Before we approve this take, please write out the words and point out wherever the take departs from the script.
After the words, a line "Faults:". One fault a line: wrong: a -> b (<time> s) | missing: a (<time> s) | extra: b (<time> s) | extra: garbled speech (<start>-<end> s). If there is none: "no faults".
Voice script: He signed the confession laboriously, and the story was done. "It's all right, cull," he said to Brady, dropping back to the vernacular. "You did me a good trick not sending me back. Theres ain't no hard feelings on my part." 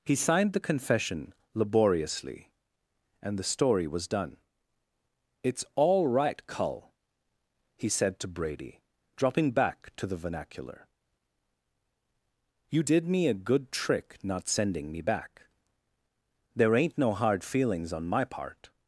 He signed the confession laboriously, and the story was done. "It's all right, cull," he said to Brady, dropping back to the vernacular. "You did me a good trick not sending me back. There ain't no hard feelings on my part."
Faults:
wrong: Theres -> There (16.5 s)